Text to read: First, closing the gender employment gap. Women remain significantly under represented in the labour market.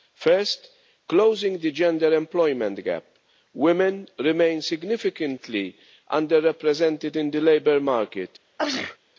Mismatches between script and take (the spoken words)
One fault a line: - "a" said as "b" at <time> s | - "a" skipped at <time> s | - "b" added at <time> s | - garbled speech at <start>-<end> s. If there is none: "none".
none